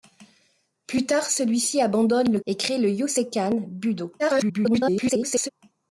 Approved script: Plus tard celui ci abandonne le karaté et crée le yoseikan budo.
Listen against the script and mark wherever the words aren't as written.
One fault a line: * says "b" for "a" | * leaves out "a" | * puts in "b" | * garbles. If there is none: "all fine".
* leaves out "karaté"
* garbles